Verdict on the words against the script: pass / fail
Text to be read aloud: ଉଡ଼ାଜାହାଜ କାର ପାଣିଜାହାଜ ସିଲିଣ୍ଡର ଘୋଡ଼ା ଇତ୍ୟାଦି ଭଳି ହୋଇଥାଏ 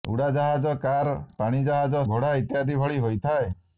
fail